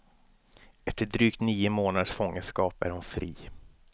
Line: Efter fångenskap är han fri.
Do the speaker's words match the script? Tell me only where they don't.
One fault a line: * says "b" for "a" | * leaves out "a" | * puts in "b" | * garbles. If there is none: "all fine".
* puts in "drygt nio månaders"
* says "hon" for "han"